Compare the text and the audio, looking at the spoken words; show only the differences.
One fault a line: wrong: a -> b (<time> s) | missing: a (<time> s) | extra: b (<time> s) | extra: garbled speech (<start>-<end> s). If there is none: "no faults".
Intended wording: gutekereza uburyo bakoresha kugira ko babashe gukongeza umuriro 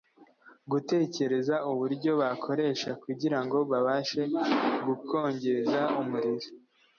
wrong: ko -> ngo (3.4 s)